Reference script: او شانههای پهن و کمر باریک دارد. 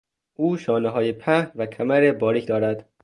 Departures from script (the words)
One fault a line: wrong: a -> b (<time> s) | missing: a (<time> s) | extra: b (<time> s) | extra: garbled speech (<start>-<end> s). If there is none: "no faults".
no faults